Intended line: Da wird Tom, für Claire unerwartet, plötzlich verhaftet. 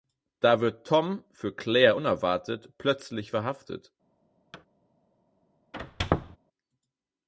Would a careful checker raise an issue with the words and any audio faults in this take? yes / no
yes